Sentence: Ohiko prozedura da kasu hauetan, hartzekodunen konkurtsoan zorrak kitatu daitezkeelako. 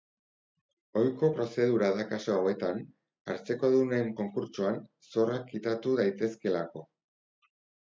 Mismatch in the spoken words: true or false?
false